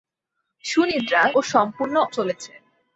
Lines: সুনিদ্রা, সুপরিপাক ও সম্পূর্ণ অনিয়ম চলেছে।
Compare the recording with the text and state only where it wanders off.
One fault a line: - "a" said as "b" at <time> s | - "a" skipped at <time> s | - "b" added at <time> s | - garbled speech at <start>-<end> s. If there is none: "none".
- "সুপরিপাক" skipped at 1.2 s
- "অনিয়ম" skipped at 2.0 s